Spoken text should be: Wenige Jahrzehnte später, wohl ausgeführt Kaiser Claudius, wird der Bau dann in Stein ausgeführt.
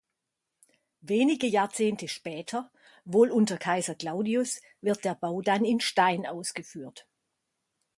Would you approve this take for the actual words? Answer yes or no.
no